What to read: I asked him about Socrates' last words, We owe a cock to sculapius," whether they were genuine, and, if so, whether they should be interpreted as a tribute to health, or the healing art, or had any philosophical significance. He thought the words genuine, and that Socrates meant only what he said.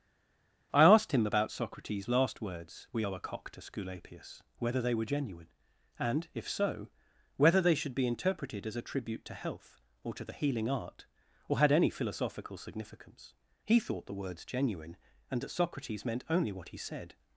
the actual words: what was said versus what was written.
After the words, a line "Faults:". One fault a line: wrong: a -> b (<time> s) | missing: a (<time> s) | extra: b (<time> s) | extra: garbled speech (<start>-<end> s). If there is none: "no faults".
I asked him about Socrates' last words, We owe a cock to sculapius," whether they were genuine, and, if so, whether they should be interpreted as a tribute to health, or to the healing art, or had any philosophical significance. He thought the words genuine, and that Socrates meant only what he said.
Faults:
extra: to (10.1 s)